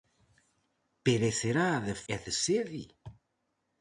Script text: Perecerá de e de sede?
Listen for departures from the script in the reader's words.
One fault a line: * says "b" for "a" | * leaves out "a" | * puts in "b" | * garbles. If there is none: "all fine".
all fine